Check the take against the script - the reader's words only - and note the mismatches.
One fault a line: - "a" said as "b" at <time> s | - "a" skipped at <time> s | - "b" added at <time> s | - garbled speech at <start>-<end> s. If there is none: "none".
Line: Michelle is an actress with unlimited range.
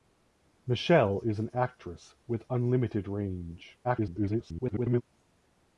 - garbled speech at 3.8-5.0 s